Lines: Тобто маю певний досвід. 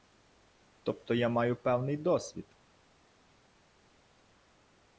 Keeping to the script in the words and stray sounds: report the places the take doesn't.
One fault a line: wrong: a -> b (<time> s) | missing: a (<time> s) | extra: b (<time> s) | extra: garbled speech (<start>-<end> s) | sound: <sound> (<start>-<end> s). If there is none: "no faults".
extra: я (1.1 s)